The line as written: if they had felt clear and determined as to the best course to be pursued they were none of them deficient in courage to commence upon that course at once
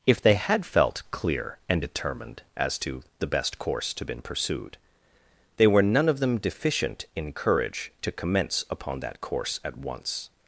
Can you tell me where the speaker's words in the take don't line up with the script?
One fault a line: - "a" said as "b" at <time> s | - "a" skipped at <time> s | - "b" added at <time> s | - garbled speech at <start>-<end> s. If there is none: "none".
- "be" said as "been" at 4.0 s